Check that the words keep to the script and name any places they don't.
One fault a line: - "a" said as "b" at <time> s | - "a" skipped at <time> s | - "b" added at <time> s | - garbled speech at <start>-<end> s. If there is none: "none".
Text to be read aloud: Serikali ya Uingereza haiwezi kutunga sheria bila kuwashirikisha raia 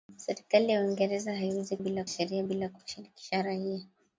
- "kutunga" said as "bila" at 1.8 s